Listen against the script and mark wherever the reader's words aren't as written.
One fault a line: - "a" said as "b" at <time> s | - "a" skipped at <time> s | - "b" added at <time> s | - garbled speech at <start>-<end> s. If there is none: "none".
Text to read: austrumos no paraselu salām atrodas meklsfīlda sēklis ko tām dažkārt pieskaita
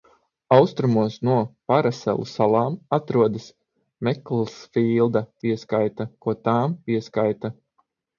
- "sēklis" said as "pieskaita" at 5.4 s
- "dažkārt" skipped at 6.8 s